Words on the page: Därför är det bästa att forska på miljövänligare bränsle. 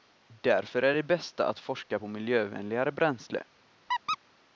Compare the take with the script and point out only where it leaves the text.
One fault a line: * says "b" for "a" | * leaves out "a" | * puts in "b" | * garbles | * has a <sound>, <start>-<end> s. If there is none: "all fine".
* has a squeak, 3.9-4.2 s